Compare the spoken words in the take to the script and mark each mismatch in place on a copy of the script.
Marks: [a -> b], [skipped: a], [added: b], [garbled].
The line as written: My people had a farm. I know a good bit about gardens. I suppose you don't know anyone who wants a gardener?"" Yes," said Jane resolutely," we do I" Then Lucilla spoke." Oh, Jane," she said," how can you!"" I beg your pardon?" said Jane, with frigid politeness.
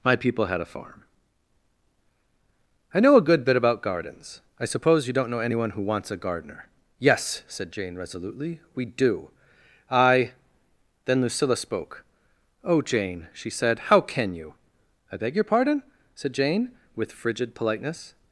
My people had a farm. I know a good bit about gardens. I suppose you don't know anyone who wants a gardener?"" Yes," said Jane resolutely," we do I" Then Lucilla spoke." Oh, Jane," she said," how can you!"" I beg your pardon?" said Jane, with frigid politeness.